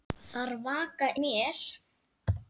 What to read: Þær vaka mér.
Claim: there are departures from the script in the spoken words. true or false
false